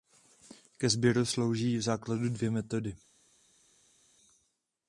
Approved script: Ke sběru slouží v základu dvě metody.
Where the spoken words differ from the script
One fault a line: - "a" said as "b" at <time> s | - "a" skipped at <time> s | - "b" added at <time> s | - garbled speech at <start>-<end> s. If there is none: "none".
none